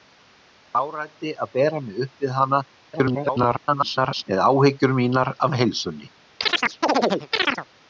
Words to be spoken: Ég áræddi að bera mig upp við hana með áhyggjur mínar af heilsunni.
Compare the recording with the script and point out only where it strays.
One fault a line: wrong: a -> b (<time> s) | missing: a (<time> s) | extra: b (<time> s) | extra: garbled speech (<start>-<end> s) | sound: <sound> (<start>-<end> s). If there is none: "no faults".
extra: garbled speech (2.9-4.2 s)
sound: chirp (6.4-7.7 s)